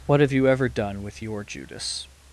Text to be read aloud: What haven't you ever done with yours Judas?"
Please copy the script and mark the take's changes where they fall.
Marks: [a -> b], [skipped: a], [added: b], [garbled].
What [haven't -> have] you ever done with [yours -> your] Judas?"